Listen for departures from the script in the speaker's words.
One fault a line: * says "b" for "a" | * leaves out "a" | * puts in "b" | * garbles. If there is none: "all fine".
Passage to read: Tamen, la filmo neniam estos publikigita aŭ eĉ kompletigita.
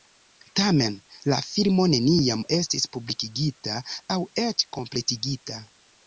* says "estis" for "estos"